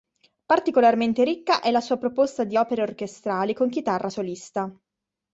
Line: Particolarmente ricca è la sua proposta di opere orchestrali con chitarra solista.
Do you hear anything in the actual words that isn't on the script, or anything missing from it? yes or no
no